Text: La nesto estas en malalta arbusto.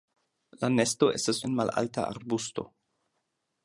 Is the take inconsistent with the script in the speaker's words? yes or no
no